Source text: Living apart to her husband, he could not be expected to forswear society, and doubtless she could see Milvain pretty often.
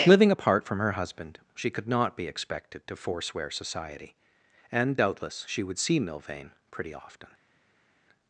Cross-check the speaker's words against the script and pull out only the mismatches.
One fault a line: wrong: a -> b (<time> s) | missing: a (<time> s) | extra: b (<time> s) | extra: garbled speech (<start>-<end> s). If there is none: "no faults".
wrong: to -> from (0.7 s)
wrong: he -> she (1.5 s)
wrong: could -> would (5.6 s)